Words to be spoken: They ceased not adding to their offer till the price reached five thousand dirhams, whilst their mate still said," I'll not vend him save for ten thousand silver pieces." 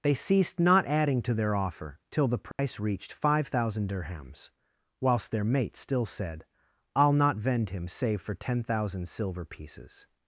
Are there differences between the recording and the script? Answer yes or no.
no